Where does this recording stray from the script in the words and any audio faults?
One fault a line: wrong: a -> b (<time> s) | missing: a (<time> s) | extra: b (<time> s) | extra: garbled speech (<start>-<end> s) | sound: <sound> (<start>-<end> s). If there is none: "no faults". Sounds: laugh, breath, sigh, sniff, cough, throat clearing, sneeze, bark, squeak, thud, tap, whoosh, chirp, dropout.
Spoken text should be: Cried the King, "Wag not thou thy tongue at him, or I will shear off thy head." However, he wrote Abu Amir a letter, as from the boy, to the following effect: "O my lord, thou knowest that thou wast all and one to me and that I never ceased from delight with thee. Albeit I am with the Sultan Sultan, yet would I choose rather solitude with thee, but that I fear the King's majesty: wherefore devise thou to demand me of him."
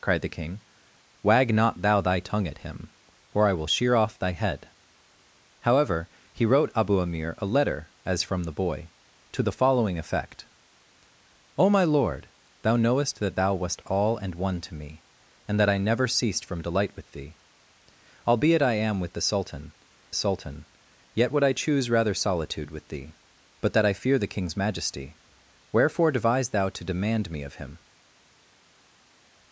no faults